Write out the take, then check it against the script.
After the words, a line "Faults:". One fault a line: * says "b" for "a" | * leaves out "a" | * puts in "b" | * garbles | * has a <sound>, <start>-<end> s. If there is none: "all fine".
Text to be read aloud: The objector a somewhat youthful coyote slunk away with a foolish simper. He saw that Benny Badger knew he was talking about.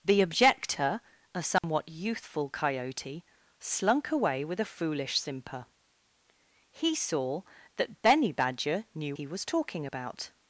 The objector a somewhat youthful coyote slunk away with a foolish simper. He saw that Benny Badger knew he was talking about.
Faults:
* has a dropout, 1.6-1.6 s